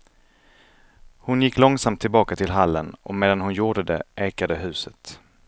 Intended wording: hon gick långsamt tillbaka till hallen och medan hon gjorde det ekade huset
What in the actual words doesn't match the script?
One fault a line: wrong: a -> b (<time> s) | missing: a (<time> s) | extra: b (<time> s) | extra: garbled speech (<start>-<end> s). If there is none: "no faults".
no faults